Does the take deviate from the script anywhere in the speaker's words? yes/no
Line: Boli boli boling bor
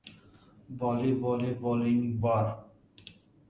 no